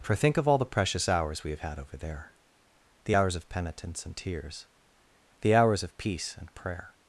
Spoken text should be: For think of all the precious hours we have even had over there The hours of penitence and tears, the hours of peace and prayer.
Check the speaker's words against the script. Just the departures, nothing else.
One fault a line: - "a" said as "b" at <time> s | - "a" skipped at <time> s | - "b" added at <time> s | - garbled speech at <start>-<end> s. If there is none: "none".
- "even" skipped at 1.6 s